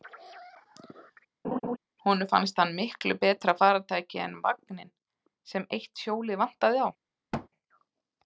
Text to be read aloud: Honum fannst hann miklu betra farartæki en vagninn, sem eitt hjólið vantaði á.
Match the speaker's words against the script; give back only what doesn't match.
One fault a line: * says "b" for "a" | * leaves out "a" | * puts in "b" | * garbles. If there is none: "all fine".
all fine